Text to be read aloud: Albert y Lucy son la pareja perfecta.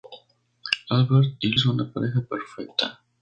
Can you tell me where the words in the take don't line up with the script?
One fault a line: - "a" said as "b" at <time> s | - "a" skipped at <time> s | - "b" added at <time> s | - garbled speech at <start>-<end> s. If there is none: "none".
- "Lucy" skipped at 1.5 s